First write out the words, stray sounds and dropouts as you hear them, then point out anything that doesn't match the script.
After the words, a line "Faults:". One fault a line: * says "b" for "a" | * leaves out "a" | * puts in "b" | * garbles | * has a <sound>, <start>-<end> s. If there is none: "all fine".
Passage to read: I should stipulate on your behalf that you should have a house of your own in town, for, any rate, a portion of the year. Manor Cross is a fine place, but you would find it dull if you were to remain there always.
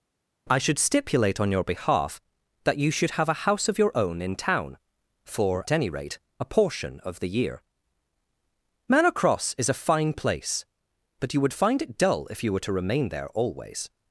I should stipulate on your behalf that you should have a house of your own in town, for, any rate, a portion of the year. Manor Cross is a fine place, but you would find it dull if you were to remain there always.
Faults:
all fine